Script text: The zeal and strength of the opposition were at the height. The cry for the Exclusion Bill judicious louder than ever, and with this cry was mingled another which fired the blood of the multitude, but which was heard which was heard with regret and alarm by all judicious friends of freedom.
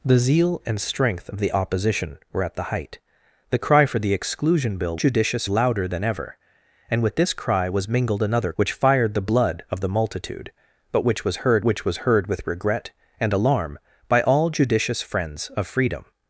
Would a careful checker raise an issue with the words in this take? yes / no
no